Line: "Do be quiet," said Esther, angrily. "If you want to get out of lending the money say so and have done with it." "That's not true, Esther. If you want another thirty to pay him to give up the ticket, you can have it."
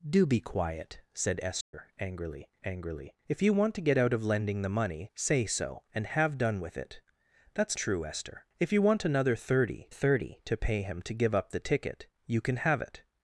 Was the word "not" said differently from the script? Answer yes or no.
yes